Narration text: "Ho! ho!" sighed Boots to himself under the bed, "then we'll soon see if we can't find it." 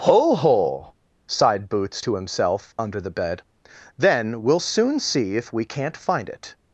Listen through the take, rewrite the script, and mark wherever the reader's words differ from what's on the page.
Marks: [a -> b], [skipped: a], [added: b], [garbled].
"Ho! ho!" sighed Boots to himself under the bed, "then we'll soon see if we can't find it."